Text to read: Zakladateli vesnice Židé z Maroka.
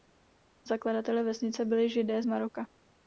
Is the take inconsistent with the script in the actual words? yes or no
yes